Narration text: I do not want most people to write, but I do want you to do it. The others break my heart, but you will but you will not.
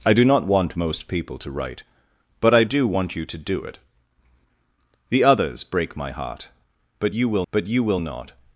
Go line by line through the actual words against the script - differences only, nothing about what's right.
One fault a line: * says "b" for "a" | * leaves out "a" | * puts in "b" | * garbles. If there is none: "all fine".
all fine